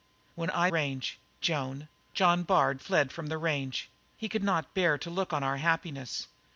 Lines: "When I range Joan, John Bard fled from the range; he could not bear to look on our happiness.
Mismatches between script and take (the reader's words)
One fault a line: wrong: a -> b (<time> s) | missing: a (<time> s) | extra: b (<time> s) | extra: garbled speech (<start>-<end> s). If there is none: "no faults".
no faults